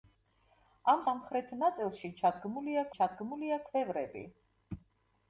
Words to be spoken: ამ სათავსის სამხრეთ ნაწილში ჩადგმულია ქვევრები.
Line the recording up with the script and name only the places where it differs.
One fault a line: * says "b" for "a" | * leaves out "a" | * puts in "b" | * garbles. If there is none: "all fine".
* leaves out "სათავსის"
* puts in "ჩადგმულია"